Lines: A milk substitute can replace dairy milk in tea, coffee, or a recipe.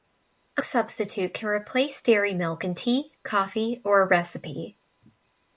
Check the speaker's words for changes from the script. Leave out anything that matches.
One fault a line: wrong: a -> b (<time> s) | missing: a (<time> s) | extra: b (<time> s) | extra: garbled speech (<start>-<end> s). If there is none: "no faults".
missing: milk (0.6 s)